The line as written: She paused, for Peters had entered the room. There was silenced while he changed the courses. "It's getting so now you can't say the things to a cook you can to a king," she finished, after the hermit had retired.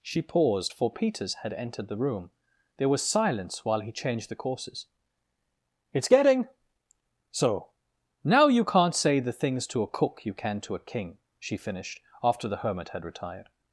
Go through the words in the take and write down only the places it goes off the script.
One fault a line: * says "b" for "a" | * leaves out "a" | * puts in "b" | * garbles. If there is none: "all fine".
* says "silence" for "silenced"